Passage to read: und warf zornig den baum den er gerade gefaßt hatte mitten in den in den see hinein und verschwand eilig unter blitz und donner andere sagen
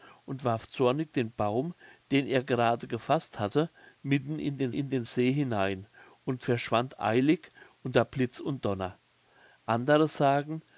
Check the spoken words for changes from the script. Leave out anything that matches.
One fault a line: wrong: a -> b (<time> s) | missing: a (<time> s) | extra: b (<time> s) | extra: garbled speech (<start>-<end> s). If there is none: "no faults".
no faults